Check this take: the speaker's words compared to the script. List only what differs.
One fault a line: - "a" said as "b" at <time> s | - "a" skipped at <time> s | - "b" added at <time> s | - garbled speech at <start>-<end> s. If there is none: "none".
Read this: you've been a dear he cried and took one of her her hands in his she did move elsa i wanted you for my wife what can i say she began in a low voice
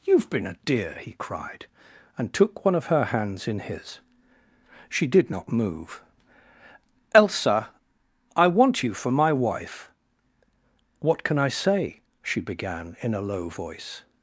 - "her" skipped at 3.0 s
- "not" added at 5.3 s
- "wanted" said as "want" at 8.5 s